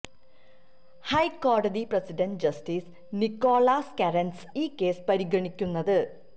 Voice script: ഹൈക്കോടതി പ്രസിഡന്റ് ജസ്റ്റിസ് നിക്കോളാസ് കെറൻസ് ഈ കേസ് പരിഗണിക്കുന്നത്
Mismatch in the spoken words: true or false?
false